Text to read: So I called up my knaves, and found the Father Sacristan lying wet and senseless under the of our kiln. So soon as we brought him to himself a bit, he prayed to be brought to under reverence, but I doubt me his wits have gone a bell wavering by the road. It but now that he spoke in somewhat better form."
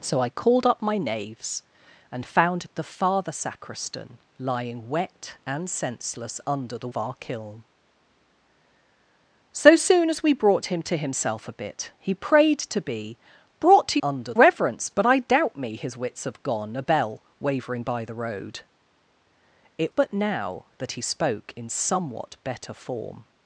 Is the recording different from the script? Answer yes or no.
no